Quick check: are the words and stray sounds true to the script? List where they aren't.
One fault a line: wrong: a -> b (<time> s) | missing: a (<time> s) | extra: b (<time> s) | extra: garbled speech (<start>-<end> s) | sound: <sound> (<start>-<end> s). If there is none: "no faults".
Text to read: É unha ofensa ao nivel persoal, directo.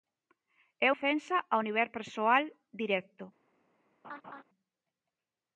missing: unha (0.9 s)
sound: laugh (4.0-4.4 s)